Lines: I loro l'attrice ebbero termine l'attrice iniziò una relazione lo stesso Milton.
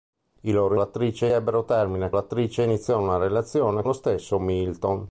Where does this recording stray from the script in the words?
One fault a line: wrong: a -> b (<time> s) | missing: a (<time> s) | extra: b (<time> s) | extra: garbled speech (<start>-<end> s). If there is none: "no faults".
no faults